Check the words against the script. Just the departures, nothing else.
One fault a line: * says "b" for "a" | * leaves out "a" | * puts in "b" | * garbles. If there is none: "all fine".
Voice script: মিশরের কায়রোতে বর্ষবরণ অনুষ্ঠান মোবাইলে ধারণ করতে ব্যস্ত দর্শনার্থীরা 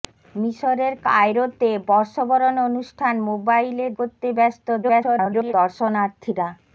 * leaves out "ধারণ"
* garbles